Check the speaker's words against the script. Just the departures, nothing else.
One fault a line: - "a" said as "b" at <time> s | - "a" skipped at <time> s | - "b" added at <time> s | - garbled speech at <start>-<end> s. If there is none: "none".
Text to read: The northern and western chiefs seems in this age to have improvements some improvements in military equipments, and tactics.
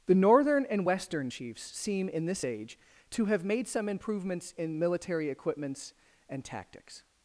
- "seems" said as "seem" at 1.6 s
- "improvements" said as "made" at 3.4 s